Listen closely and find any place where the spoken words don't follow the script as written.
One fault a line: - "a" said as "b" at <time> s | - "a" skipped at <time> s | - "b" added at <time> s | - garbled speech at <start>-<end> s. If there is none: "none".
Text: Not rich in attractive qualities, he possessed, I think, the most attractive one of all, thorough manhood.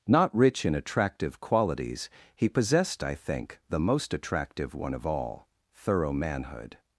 none